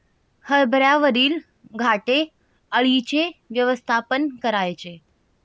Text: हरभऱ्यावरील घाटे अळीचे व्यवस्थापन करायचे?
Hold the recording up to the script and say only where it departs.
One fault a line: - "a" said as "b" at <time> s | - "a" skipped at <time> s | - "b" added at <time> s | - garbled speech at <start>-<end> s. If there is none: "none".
none